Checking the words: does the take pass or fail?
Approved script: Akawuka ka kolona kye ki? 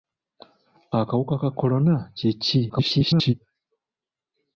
fail